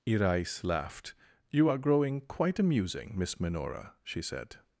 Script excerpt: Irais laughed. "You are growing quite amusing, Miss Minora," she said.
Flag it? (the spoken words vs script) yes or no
no